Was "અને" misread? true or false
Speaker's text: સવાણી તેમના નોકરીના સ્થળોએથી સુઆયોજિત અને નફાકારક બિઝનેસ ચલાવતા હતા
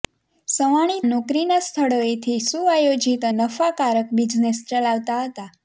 true